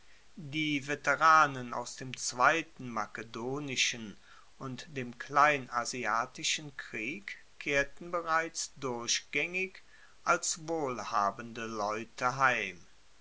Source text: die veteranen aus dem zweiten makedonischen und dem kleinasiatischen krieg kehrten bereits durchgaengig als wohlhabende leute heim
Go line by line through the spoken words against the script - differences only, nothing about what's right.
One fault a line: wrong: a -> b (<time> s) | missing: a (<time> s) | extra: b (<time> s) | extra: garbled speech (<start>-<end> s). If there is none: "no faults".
no faults